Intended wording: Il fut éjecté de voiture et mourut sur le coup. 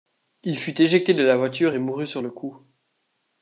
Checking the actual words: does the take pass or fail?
fail